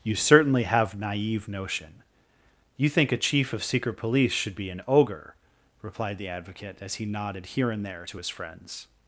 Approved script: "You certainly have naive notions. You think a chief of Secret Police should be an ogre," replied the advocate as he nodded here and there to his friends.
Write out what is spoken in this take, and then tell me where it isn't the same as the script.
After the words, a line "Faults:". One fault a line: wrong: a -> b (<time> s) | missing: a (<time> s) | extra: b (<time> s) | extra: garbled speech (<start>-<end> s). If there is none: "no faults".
"You certainly have naive notion. You think a chief of Secret Police should be an ogre," replied the advocate as he nodded here and there to his friends.
Faults:
wrong: notions -> notion (1.5 s)